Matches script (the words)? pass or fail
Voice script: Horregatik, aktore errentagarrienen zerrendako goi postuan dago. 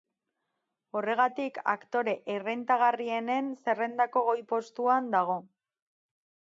pass